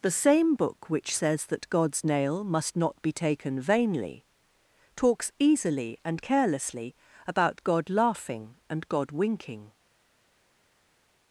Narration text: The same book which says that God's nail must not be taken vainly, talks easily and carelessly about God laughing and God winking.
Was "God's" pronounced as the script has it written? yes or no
yes